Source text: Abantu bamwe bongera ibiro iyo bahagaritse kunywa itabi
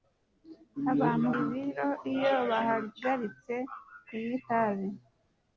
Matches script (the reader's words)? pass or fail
fail